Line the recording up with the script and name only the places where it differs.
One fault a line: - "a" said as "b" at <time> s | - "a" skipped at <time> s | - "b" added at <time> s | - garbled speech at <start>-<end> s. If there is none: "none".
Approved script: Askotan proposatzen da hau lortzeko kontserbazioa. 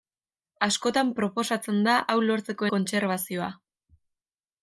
none